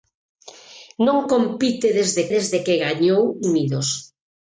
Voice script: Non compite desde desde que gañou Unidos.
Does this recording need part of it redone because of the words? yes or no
no